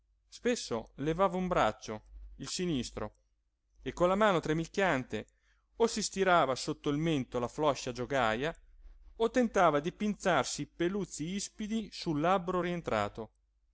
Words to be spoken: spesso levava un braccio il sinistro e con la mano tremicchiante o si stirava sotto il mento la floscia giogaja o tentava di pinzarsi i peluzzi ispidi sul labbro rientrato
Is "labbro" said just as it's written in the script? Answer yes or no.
yes